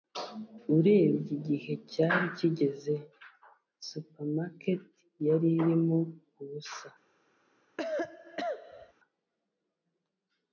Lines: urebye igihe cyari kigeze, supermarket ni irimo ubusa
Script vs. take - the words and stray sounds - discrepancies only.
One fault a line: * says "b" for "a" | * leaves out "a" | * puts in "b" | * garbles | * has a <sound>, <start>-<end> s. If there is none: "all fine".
* says "yari" for "ni"
* has a cough, 7.8-8.9 s